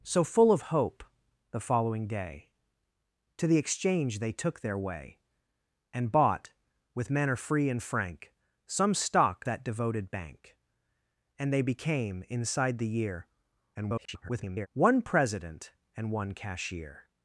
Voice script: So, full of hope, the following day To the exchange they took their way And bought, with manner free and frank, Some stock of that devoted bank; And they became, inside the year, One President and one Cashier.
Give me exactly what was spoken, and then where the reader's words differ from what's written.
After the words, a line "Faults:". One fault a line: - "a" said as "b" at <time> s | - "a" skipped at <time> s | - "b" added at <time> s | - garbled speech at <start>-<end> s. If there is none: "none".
So, full of hope, the following day To the exchange they took their way And bought, with manner free and frank, Some stock that devoted bank; And they became, inside the year, [garbled] One President and one Cashier.
Faults:
- "of" skipped at 9.4 s
- garbled speech at 13.7-14.7 s